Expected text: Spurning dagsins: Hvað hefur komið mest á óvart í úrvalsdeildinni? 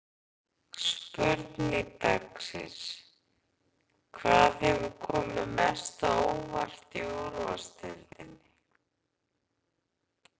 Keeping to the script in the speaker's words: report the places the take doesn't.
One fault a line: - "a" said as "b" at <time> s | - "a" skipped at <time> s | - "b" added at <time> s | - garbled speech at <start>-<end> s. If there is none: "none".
none